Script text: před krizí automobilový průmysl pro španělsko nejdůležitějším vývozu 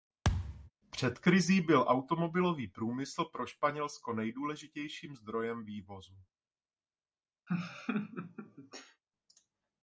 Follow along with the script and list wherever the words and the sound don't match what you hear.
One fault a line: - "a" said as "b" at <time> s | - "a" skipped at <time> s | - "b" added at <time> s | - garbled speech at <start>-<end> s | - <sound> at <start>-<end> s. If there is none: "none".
- thud at 0.2-0.7 s
- "byl" added at 1.6 s
- "zdrojem" added at 5.2 s
- laugh at 7.5-9.0 s